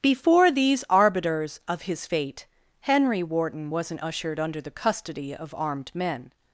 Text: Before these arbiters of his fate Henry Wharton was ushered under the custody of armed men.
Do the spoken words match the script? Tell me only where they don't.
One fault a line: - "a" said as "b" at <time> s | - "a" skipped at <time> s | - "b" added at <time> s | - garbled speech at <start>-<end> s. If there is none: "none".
- "was" said as "wasn't" at 3.7 s